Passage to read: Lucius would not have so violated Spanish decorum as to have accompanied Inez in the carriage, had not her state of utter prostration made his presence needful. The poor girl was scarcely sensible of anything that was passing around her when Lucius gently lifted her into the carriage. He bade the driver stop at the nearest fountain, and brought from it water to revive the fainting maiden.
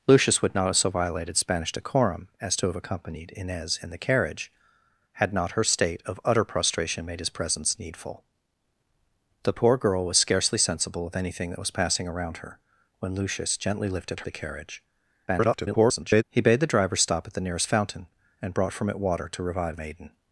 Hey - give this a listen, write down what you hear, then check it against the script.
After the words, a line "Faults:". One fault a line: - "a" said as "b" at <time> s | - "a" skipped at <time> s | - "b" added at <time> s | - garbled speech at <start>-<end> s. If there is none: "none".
Lucius would not have so violated Spanish decorum as to have accompanied Inez in the carriage, had not her state of utter prostration made his presence needful. The poor girl was scarcely sensible of anything that was passing around her when Lucius gently lifted the carriage. [garbled] He bade the driver stop at the nearest fountain, and brought from it water to revive maiden.
Faults:
- "her into" skipped at 14.2 s
- garbled speech at 15.3-16.2 s
- "the fainting" skipped at 19.8 s